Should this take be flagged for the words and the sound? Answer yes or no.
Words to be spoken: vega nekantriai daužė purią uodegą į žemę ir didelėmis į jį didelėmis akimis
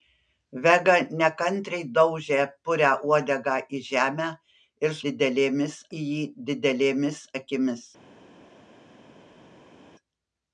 no